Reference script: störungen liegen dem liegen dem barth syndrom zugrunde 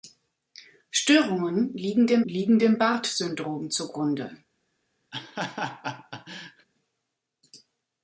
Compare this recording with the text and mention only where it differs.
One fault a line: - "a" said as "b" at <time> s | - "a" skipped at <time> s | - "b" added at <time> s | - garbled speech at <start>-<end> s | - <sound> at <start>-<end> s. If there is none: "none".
- laugh at 5.1-6.7 s